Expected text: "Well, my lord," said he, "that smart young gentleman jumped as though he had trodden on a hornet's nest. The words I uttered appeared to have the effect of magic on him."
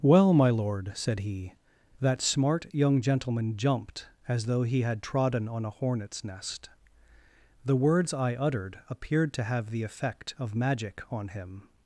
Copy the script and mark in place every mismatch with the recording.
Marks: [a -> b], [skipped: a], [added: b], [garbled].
"Well, my lord," said he, "that smart young gentleman jumped as though he had trodden on a hornet's nest. The words I uttered appeared to have the effect of magic on him."